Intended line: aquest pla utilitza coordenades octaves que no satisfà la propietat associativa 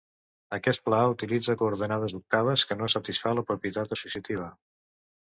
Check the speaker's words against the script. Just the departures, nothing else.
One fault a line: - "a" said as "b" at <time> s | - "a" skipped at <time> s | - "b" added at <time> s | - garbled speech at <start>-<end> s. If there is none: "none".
none